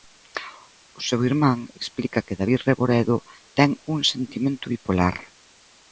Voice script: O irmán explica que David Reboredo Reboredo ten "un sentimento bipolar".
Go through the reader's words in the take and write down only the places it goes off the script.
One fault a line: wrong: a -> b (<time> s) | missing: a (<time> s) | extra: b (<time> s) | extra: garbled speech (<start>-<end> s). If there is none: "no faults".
extra: seu (1.1 s)
missing: Reboredo (3.2 s)